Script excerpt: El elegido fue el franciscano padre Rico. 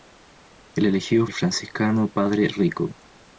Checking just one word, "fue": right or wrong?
wrong